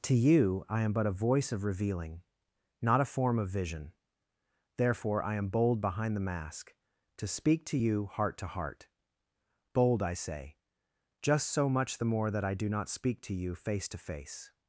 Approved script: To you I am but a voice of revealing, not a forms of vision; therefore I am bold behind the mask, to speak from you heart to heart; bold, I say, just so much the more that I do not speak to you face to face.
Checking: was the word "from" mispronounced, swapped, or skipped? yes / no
yes